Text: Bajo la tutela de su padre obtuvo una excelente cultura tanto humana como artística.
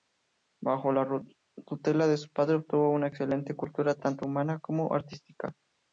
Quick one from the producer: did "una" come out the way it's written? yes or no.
yes